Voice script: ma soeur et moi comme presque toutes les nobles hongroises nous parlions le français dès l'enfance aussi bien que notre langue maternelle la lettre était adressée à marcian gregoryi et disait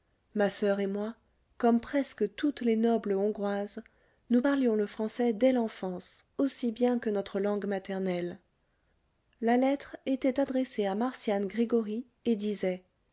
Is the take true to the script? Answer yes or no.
yes